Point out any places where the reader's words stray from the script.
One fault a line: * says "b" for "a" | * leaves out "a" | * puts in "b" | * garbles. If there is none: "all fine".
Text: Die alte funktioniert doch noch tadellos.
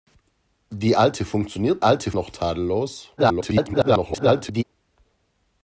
* says "alte" for "doch"
* garbles